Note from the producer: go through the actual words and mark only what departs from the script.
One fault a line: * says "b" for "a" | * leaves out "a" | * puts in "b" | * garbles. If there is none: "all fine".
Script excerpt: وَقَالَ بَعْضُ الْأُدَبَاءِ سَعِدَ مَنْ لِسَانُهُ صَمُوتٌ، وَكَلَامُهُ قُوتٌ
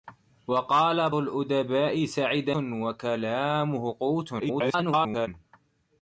* leaves out "بَعْضُ"
* leaves out "مَنْ لِسَانُهُ صَمُوتٌ"
* garbles